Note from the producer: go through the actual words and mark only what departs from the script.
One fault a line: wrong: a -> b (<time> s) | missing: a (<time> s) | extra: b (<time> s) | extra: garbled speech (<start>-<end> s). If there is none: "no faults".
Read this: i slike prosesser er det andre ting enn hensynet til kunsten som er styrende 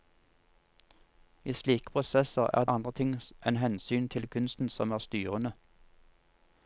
missing: det (2.6 s)